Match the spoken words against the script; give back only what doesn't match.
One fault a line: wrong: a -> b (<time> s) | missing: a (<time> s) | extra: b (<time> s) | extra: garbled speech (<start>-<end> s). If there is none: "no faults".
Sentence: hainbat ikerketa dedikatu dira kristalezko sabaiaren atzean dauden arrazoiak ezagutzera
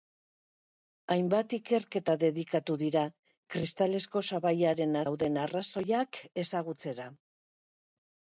missing: atzean (5.0 s)